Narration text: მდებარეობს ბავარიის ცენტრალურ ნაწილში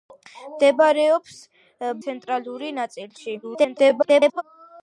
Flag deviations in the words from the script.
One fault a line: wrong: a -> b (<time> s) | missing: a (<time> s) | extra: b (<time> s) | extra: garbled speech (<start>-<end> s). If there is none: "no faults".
missing: ბავარიის (1.4 s)
extra: garbled speech (3.4-4.4 s)